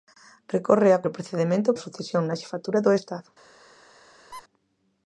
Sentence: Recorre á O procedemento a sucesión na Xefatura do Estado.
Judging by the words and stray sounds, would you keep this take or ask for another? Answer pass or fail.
fail